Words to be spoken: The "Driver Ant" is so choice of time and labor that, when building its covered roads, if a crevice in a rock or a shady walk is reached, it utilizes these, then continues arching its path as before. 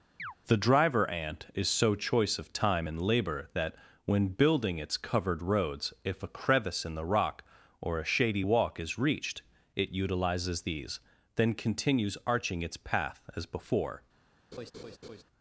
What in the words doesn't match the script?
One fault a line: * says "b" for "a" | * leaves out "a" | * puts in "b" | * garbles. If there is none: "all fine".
* says "the" for "a"